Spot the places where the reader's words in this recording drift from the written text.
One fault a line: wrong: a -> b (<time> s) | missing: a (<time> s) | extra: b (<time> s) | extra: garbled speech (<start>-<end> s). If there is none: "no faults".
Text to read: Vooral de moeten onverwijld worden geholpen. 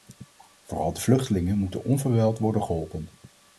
extra: vluchtelingen (1.0 s)